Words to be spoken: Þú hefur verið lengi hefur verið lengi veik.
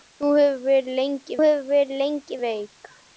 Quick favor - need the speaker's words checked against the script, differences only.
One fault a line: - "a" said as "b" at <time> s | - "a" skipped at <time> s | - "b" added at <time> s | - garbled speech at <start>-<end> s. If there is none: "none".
none